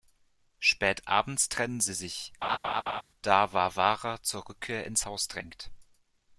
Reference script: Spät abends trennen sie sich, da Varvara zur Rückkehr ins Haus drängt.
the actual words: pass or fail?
pass